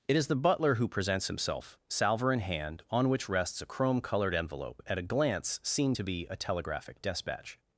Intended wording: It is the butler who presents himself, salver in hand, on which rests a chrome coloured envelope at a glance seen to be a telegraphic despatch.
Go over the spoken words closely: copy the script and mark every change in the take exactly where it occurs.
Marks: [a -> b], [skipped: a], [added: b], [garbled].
It is the butler who presents himself, salver in hand, on which rests a chrome coloured envelope at a glance seen to be a telegraphic despatch.